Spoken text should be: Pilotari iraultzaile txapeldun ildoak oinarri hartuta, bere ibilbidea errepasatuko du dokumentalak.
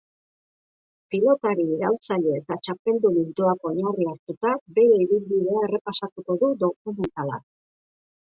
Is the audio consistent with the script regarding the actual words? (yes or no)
no